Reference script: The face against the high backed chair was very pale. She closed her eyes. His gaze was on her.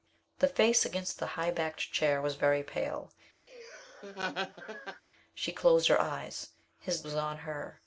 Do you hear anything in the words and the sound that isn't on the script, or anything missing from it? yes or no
yes